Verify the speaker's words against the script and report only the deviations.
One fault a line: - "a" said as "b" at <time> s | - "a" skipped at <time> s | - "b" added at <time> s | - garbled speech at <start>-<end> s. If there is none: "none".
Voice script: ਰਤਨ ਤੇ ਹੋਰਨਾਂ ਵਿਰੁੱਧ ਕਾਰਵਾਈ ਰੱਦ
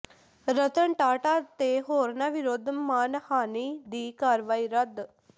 - "ਟਾਟਾ" added at 0.9 s
- "ਮਾਣਹਾਨੀ ਦੀ" added at 2.7 s